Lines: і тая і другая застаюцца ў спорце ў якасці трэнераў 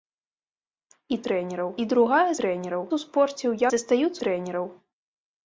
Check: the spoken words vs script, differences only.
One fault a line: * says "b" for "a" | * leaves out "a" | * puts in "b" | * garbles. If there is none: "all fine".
* says "трэнераў" for "тая"
* says "трэнераў" for "застаюцца"
* says "застаюцца" for "якасці"